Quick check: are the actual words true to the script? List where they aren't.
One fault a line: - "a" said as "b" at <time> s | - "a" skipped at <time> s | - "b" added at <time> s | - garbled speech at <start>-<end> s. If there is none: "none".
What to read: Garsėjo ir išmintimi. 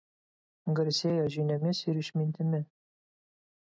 - "žiniomis" added at 1.4 s